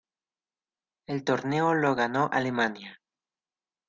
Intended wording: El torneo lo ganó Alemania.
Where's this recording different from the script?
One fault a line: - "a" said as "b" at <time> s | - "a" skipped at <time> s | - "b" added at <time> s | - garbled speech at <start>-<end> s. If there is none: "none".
none